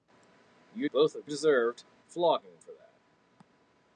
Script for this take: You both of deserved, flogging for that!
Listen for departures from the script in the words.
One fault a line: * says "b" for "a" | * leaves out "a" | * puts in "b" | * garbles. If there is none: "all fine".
all fine